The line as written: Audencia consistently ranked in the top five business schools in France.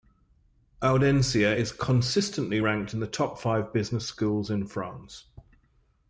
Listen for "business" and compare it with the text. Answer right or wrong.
right